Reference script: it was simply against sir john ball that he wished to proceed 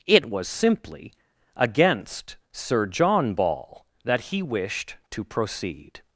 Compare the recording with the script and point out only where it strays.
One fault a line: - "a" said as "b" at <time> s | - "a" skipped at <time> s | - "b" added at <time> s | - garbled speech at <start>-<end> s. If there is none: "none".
none